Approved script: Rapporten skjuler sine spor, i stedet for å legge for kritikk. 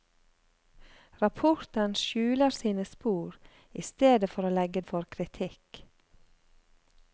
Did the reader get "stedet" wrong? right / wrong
right